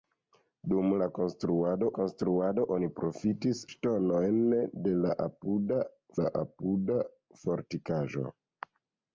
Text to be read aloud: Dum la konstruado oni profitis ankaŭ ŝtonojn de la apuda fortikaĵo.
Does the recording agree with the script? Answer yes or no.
no